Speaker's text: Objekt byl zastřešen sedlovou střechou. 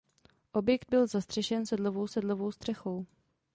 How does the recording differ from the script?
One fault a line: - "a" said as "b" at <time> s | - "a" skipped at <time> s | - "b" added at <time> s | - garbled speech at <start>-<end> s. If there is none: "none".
- "sedlovou" added at 2.1 s